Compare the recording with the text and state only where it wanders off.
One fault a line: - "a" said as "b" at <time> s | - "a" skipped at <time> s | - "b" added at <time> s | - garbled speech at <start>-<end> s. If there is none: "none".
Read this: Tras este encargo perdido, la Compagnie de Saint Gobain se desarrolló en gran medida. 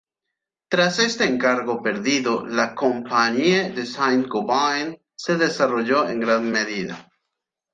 none